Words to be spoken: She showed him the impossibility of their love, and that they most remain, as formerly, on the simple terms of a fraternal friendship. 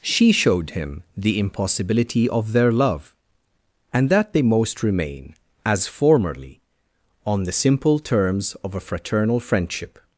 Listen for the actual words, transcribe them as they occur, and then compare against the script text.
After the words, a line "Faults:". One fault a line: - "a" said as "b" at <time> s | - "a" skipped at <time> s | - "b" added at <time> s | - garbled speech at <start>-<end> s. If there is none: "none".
She showed him the impossibility of their love, and that they most remain, as formerly, on the simple terms of a fraternal friendship.
Faults:
none